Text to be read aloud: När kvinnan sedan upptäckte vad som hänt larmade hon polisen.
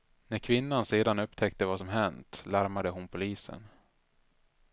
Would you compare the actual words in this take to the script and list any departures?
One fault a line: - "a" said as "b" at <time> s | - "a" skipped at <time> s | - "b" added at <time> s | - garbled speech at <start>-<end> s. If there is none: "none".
none